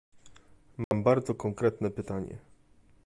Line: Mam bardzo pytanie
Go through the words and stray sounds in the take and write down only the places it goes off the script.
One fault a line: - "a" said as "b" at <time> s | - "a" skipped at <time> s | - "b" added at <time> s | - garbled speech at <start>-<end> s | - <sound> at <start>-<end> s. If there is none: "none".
- dropout at 0.8-0.9 s
- "konkretne" added at 1.4 s